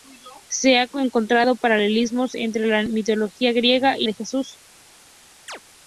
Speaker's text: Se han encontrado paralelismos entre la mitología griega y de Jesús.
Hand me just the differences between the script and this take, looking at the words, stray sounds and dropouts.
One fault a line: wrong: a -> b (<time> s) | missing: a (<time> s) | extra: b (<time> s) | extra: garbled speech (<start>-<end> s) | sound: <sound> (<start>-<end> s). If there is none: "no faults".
sound: chirp (5.5-5.6 s)